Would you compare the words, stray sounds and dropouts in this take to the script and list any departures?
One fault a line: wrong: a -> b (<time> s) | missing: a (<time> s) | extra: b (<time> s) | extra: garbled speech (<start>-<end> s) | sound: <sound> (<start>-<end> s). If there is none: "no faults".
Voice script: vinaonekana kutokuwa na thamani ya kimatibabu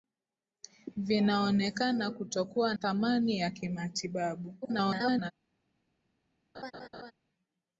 missing: na (2.7 s)
extra: garbled speech (4.6-5.3 s)
sound: laugh (6.5-7.1 s)